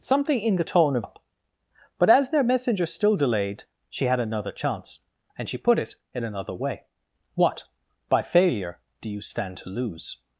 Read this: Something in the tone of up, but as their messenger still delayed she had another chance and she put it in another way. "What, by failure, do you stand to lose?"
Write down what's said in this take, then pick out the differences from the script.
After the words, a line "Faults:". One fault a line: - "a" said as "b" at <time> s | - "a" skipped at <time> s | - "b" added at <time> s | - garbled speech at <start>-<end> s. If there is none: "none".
Something in the tone of up, but as their messenger still delayed she had another chance and she put it in another way. "What, by failure, do you stand to lose?"
Faults:
none